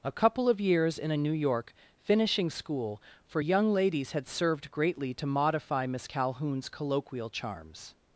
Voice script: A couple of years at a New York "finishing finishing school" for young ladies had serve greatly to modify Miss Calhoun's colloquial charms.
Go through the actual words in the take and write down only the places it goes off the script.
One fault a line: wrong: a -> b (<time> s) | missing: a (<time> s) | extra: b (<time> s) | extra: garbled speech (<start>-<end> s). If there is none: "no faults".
wrong: at -> in (1.0 s)
missing: finishing (2.5 s)
wrong: serve -> served (4.3 s)